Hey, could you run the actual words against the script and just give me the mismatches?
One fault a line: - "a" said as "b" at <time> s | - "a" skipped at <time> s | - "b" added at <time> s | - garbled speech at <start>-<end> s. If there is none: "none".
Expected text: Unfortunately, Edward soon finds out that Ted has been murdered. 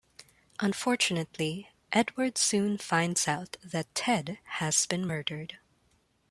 none